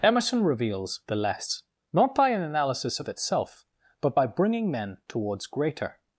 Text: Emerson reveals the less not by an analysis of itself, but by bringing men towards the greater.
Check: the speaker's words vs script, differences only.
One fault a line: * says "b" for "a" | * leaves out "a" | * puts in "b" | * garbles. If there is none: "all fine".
* leaves out "the"